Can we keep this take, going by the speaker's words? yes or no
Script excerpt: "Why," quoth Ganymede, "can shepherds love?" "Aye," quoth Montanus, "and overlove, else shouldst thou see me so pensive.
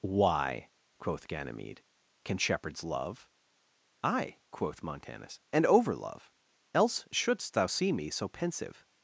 yes